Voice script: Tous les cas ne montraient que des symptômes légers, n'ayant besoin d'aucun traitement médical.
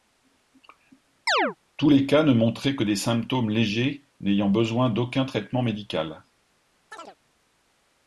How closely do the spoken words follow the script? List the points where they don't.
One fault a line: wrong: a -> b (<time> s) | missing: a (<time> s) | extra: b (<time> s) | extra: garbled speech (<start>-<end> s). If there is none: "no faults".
no faults